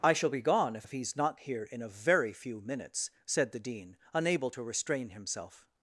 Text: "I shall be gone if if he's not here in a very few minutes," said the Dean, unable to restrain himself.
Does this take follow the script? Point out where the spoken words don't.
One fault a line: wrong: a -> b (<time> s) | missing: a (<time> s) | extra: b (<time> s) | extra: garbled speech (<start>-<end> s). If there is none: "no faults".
no faults